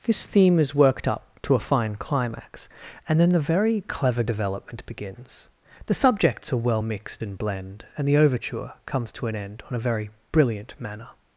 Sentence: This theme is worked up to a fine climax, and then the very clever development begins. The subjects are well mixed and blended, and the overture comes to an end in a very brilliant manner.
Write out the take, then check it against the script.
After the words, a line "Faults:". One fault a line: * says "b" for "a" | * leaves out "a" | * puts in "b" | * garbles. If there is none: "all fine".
This theme is worked up to a fine climax, and then the very clever development begins. The subjects are well mixed and blend, and the overture comes to an end on a very brilliant manner.
Faults:
* says "blend" for "blended"
* says "on" for "in"